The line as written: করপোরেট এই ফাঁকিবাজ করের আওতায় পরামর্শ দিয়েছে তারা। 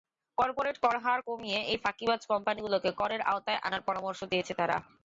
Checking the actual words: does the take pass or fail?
fail